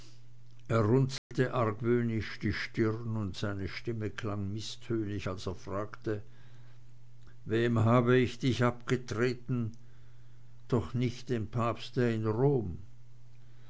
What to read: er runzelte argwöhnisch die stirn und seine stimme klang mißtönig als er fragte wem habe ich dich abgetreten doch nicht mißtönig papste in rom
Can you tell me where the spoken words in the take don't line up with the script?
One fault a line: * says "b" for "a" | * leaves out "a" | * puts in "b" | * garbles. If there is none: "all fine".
* says "dem" for "mißtönig"